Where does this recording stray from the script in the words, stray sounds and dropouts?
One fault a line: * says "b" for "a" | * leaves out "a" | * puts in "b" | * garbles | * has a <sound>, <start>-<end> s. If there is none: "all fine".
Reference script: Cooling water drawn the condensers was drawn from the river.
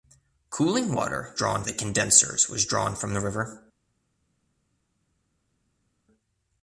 all fine